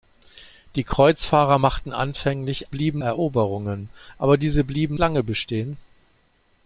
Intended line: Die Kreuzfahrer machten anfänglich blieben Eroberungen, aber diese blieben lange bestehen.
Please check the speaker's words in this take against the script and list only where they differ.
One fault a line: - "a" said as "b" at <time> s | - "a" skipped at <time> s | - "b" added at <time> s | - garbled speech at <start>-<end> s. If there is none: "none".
none